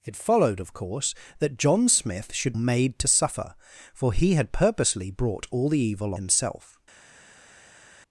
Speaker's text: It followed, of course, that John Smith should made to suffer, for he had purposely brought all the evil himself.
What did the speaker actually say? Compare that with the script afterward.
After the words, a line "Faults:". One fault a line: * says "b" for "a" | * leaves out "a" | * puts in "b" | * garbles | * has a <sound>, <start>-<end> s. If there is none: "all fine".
It followed, of course, that John Smith should made to suffer, for he had purposely brought all the evil himself.
Faults:
all fine